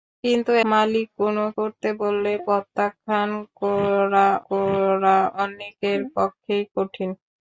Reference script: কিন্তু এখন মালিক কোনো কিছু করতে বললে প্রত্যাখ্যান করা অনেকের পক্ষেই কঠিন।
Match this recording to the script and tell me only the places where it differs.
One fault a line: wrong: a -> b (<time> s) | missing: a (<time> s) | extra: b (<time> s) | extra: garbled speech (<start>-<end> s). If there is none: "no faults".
missing: এখন (0.5 s)
missing: কিছু (1.4 s)
extra: করা (4.5 s)